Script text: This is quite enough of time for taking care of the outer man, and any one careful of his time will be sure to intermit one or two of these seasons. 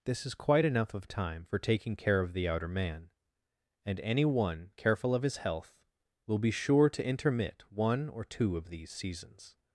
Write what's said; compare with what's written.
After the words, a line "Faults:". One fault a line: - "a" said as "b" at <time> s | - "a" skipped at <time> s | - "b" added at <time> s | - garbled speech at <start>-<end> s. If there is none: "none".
This is quite enough of time for taking care of the outer man, and any one careful of his health will be sure to intermit one or two of these seasons.
Faults:
- "time" said as "health" at 5.4 s